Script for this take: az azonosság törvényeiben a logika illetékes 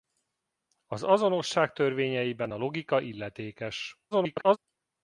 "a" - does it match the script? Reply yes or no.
yes